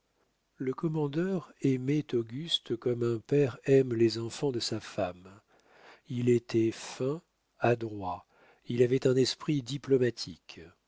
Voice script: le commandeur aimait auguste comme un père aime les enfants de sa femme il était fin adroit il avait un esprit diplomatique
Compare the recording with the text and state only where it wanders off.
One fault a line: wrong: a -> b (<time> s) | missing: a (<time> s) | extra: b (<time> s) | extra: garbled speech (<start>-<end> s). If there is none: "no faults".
no faults